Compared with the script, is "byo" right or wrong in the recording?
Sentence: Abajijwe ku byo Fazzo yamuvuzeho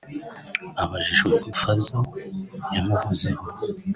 wrong